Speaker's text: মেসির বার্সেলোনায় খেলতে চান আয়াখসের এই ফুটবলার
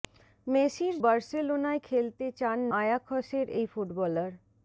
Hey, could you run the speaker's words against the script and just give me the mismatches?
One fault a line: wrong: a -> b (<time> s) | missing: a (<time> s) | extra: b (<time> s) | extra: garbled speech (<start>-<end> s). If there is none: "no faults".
no faults